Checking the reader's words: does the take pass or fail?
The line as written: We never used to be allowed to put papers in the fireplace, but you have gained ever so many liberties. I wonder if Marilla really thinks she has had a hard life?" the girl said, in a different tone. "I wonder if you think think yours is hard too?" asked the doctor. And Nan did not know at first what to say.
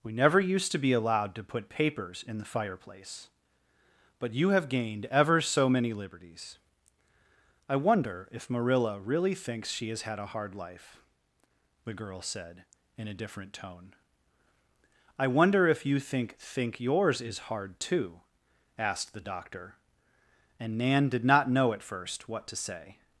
pass